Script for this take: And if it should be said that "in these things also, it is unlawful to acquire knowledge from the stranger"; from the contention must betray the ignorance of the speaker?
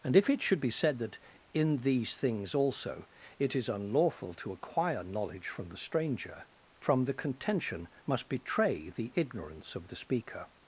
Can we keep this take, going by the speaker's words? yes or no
yes